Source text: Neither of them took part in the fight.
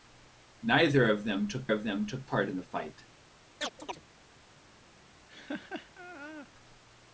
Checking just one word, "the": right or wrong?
right